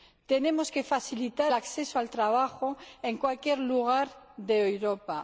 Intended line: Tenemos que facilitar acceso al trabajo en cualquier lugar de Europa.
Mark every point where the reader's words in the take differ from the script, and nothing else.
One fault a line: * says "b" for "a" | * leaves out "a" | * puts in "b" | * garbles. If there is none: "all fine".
all fine